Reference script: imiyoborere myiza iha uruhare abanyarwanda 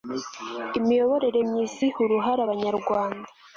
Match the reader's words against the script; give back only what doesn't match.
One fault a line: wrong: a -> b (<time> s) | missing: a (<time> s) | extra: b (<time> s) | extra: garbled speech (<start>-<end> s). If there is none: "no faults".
no faults